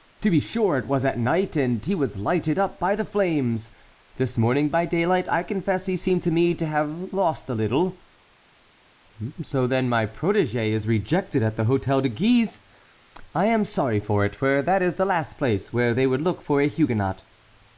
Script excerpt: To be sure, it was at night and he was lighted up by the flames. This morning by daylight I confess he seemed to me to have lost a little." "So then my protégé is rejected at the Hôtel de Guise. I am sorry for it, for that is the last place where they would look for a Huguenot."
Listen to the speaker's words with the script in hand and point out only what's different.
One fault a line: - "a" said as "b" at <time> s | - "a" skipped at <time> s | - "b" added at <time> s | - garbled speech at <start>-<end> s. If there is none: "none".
none